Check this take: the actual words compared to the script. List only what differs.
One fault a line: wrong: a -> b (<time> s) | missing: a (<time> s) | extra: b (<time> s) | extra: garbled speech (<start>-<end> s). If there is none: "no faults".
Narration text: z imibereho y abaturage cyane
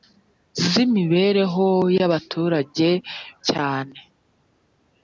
no faults